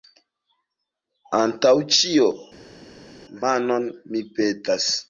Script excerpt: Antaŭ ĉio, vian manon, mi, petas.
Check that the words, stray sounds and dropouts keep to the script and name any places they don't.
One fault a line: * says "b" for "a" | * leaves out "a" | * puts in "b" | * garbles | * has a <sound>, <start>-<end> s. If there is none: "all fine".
* leaves out "vian"